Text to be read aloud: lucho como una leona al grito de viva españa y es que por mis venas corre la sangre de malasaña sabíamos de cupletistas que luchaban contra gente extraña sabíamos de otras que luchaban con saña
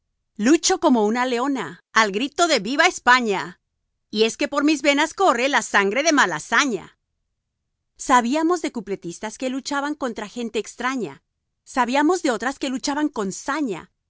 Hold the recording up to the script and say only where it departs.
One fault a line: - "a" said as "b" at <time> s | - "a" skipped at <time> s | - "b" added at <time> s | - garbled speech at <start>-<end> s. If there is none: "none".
none